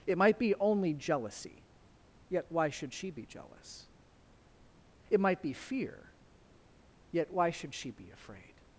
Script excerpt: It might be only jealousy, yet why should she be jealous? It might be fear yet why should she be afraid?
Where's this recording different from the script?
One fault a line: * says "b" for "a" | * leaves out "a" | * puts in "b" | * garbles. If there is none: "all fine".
all fine